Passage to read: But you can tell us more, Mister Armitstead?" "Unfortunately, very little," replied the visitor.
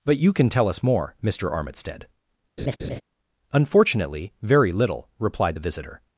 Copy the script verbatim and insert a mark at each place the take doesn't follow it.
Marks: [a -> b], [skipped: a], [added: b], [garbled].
But you can tell us more, Mister Armitstead?" "Unfortunately, very little," replied the visitor.